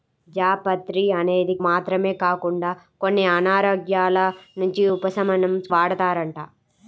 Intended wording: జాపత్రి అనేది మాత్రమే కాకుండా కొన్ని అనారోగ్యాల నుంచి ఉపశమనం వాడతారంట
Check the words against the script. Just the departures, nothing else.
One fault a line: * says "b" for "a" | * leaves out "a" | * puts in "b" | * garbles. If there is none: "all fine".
all fine